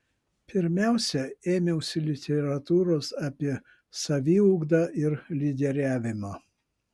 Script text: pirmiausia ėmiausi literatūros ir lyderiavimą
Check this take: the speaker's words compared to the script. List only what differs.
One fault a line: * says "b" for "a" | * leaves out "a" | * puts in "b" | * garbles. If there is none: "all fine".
* puts in "apie saviugdą"